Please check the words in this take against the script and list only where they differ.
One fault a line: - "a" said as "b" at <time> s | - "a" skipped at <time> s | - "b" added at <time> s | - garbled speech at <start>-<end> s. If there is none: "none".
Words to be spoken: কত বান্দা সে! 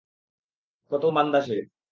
none